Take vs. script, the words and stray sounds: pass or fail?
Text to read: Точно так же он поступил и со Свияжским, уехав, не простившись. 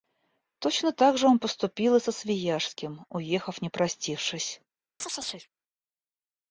fail